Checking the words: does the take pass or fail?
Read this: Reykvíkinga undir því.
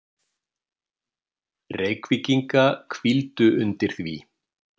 fail